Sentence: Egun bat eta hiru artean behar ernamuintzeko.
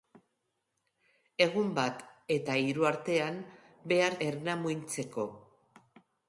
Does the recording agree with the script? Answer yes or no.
yes